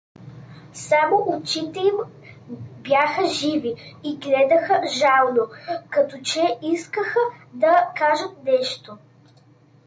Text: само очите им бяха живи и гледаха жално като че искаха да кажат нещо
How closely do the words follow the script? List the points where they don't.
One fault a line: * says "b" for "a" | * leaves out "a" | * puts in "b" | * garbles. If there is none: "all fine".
all fine